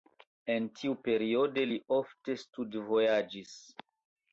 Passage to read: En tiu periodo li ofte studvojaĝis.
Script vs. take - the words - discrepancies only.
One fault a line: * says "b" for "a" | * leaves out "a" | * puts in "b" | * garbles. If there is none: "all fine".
all fine